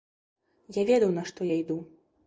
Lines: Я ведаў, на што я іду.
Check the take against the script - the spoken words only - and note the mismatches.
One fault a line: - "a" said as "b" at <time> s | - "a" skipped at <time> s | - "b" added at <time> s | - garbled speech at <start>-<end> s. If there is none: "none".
none